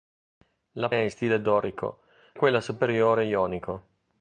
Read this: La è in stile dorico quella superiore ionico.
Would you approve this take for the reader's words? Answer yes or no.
yes